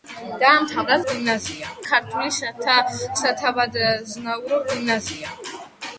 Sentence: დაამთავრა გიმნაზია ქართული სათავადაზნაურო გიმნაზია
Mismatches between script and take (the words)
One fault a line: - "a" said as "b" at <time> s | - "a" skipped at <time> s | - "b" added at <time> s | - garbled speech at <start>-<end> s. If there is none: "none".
none